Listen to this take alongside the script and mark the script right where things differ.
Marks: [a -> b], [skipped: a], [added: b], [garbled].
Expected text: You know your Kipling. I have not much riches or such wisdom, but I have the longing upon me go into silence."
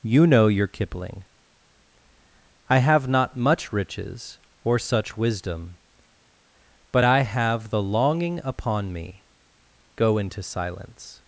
You know your Kipling. I have not much riches or such wisdom, but I have the longing upon me go into silence."